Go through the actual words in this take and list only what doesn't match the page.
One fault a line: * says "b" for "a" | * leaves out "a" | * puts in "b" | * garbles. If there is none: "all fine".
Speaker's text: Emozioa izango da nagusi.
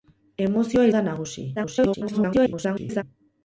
* leaves out "izango"
* garbles